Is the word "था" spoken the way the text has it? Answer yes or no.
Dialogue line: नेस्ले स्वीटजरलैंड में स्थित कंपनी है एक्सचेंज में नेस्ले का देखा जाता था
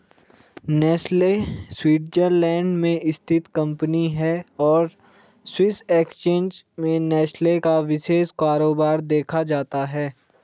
no